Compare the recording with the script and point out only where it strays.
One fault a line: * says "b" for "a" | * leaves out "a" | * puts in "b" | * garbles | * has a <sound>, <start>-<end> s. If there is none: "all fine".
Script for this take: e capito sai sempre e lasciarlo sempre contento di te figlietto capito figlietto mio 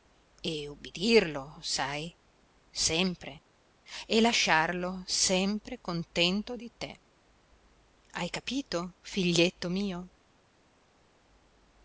* says "ubbidirlo" for "capito"
* says "hai" for "figlietto"